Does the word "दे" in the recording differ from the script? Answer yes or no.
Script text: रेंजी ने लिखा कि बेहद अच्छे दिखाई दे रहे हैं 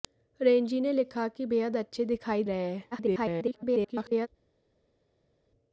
yes